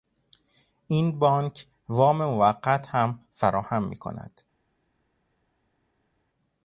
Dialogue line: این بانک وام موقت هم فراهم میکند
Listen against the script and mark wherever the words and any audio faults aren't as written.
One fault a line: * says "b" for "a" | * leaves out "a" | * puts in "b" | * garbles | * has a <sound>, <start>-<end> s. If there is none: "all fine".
all fine